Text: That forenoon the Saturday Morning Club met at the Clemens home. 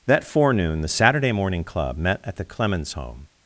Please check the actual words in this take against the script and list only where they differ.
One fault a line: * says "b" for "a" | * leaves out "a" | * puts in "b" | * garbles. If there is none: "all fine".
all fine